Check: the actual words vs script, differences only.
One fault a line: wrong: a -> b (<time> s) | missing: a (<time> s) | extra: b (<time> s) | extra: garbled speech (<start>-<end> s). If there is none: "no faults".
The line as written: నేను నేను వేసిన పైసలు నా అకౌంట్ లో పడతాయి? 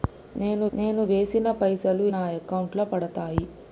no faults